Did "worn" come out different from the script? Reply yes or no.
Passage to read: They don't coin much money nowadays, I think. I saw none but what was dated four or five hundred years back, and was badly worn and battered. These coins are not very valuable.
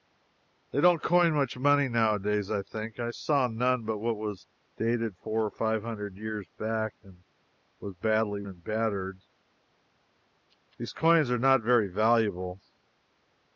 yes